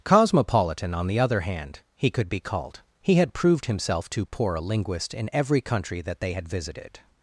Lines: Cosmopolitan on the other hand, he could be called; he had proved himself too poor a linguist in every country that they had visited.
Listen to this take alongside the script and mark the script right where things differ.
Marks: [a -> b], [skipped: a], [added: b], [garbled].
Cosmopolitan on the other hand, he could be called; he had proved himself too poor a linguist in every country that they had visited.